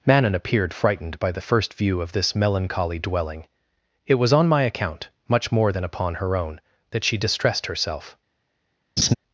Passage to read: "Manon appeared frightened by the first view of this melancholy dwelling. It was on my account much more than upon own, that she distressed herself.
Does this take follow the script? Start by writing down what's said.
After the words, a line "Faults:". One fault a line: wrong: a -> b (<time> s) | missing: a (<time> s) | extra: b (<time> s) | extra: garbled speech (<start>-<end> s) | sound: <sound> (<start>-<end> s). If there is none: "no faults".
"Manon appeared frightened by the first view of this melancholy dwelling. It was on my account much more than upon her own, that she distressed herself.
Faults:
extra: her (6.2 s)
sound: laugh (9.0-9.1 s)